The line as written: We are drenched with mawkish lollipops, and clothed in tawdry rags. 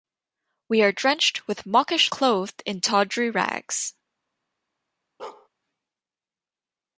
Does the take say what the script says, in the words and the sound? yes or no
no